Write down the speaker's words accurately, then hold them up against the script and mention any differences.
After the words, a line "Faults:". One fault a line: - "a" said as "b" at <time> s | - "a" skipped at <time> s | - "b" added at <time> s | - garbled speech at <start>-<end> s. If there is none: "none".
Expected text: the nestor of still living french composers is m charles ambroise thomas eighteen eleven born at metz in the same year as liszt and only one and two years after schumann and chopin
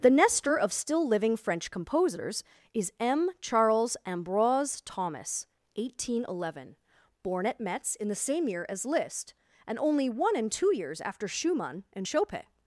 the nestor of still living french composers is m charles ambroise thomas eighteen eleven born at metz in the same year as liszt and only one and two years after schumann and chopin
Faults:
none